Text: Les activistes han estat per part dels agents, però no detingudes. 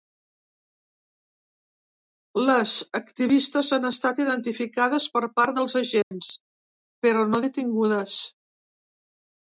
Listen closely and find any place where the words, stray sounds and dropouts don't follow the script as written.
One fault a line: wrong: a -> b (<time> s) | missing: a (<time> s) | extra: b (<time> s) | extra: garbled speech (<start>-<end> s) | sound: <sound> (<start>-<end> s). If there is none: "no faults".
extra: identificades (4.2 s)
sound: dropout (6.0-6.1 s)